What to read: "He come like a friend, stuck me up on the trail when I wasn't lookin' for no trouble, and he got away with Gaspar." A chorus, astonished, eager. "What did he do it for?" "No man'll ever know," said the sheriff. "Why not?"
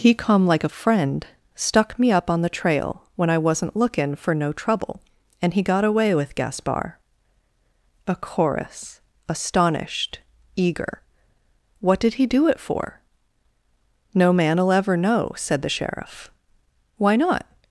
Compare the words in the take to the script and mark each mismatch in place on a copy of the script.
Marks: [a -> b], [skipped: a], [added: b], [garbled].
"He come like a friend, stuck me up on the trail when I wasn't lookin' for no trouble, and he got away with Gaspar." A chorus, astonished, eager. "What did he do it for?" "No man'll ever know," said the sheriff. "Why not?"